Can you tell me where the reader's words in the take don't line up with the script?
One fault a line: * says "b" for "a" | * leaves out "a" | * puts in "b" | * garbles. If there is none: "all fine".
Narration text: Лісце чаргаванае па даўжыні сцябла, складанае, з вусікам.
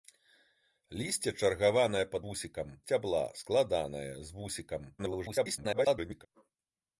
* says "вусікам" for "даўжыні"
* garbles